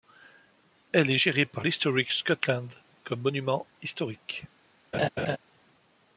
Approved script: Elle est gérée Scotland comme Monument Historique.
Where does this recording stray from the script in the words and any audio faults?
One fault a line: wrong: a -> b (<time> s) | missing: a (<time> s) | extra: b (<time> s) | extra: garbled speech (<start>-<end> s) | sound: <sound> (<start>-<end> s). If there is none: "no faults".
extra: par l'Historic (1.4 s)
sound: laugh (4.9-5.4 s)